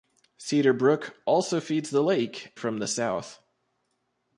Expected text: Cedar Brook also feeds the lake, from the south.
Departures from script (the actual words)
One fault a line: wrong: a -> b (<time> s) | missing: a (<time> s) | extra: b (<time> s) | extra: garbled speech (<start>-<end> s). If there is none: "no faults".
no faults